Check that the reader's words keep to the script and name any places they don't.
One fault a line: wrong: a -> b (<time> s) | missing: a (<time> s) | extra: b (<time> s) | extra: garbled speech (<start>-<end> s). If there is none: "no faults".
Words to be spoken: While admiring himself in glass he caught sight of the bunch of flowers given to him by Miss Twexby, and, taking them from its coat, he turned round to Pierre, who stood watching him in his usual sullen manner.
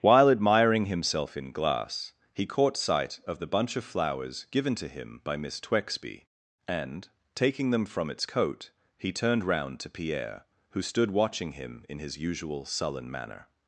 no faults